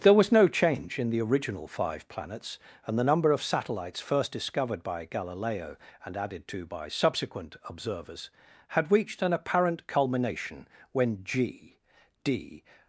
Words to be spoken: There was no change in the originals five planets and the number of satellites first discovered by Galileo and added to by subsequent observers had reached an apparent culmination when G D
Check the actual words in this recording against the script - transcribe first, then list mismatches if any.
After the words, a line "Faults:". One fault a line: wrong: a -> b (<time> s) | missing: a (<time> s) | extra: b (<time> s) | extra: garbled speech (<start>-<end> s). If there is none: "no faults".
There was no change in the original five planets and the number of satellites first discovered by Galileo and added to by subsequent observers had reached an apparent culmination when G D
Faults:
wrong: originals -> original (1.2 s)